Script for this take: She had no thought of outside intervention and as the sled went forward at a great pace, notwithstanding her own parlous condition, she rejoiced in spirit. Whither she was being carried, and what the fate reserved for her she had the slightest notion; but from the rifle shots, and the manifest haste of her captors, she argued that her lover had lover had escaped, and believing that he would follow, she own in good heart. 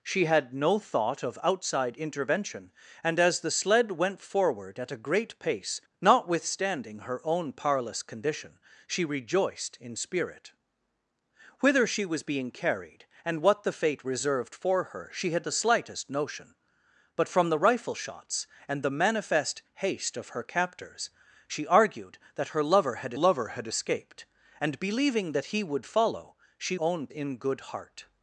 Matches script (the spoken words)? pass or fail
pass